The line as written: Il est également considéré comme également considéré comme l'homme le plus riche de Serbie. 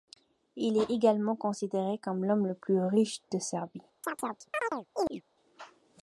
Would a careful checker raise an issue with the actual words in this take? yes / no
yes